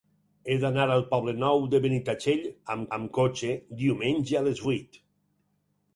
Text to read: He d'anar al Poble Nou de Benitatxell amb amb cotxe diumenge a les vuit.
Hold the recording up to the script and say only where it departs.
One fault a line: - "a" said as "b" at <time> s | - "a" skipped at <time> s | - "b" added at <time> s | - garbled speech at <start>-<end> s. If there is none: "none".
none